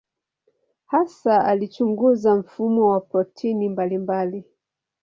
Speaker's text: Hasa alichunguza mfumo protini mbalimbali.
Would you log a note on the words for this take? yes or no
yes